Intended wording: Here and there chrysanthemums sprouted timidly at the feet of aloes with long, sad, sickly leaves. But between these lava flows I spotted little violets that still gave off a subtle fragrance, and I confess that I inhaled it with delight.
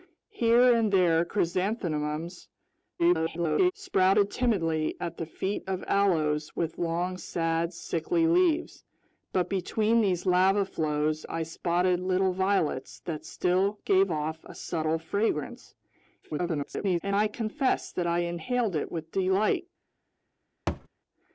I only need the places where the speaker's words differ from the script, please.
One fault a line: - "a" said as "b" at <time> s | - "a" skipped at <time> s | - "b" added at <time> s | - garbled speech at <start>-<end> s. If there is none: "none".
- garbled speech at 3.0-3.7 s
- garbled speech at 16.2-17.0 s